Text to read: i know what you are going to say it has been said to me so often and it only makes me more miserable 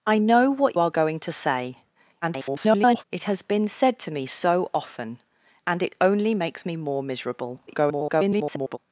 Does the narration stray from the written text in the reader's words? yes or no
yes